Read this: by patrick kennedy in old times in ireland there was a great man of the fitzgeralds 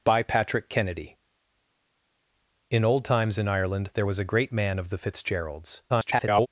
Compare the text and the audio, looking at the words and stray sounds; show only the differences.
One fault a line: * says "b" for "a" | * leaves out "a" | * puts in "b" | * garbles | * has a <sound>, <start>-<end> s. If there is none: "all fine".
* garbles